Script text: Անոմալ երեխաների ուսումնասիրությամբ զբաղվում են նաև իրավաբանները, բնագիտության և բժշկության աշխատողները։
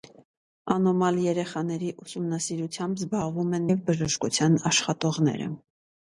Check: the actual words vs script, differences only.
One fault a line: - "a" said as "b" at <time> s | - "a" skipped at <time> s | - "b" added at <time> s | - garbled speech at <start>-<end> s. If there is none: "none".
- "նաև իրավաբանները բնագիտության" skipped at 3.7 s